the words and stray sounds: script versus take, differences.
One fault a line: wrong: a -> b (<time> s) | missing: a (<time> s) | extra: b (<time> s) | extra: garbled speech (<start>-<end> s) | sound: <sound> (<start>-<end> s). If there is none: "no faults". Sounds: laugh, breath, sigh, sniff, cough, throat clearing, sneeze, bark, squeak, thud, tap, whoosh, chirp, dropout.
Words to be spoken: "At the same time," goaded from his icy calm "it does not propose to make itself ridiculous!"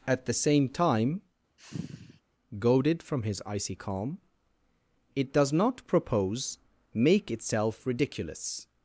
sound: sigh (1.6-2.2 s)
missing: to (6.6 s)